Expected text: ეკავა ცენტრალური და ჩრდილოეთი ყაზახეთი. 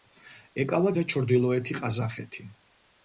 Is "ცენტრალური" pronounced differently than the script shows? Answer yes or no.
yes